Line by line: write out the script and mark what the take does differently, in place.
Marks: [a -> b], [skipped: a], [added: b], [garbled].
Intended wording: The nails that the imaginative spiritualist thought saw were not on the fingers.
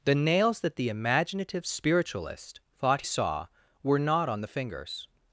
The nails that the imaginative spiritualist thought saw were not on the fingers.